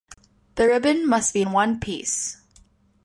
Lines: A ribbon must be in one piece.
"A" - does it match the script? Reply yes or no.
no